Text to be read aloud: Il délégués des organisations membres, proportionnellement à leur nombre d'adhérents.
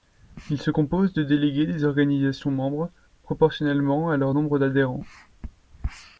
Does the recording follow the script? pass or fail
fail